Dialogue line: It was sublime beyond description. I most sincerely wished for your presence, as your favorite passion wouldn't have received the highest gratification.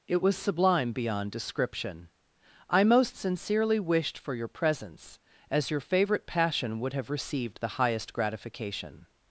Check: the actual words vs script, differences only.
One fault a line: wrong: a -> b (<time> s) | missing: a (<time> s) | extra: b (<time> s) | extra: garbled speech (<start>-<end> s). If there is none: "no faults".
wrong: wouldn't -> would (6.8 s)